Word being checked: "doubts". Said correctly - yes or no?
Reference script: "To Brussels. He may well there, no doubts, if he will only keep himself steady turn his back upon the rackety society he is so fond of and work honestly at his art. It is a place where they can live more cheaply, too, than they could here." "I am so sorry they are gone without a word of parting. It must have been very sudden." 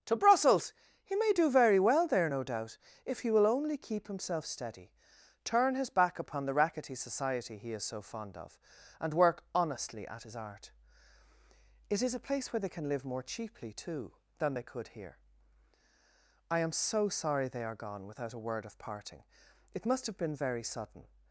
no